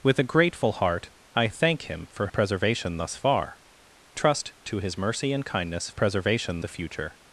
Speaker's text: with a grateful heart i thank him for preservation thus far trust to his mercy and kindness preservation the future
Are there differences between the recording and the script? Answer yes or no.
no